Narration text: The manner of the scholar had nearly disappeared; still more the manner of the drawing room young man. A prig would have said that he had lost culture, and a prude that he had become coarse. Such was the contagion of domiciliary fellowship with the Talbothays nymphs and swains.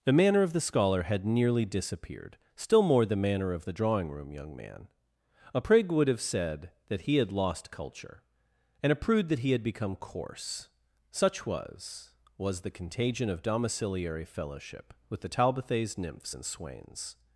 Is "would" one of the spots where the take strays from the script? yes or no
no